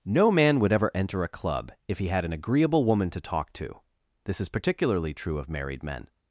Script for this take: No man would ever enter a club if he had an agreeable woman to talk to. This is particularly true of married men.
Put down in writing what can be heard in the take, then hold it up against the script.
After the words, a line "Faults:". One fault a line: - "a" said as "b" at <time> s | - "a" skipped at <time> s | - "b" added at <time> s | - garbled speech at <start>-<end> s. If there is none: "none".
No man would ever enter a club if he had an agreeable woman to talk to. This is particularly true of married men.
Faults:
none